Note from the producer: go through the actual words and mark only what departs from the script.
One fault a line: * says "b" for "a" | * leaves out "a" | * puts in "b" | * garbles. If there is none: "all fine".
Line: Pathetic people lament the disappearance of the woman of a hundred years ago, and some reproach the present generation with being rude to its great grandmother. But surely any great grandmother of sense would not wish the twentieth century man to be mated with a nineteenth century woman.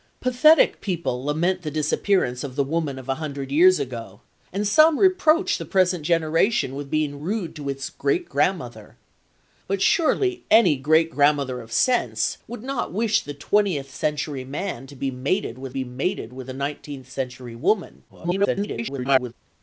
* puts in "be mated with"
* garbles